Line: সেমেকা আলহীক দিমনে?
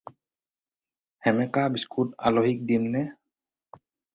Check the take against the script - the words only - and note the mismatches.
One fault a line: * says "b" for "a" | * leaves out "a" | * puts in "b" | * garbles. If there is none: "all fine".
* puts in "বিস্কুট"